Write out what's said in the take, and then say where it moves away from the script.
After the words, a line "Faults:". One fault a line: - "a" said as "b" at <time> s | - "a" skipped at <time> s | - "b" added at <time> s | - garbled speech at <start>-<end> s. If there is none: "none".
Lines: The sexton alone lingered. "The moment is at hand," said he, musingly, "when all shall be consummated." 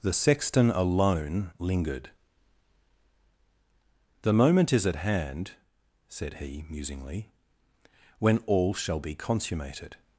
The sexton alone lingered. "The moment is at hand," said he, musingly, "when all shall be consummated."
Faults:
none